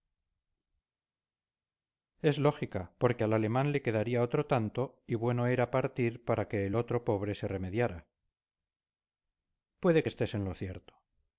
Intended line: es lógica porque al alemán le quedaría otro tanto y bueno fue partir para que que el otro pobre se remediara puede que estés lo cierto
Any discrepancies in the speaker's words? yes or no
yes